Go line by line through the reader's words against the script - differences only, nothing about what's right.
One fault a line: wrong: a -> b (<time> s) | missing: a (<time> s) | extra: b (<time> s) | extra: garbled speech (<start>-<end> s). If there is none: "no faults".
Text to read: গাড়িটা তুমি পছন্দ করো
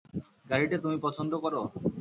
no faults